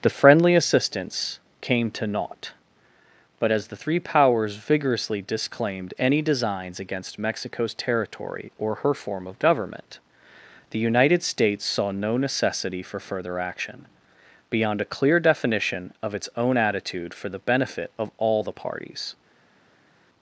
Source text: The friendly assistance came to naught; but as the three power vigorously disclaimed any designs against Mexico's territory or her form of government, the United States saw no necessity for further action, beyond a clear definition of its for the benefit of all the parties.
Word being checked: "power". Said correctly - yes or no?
no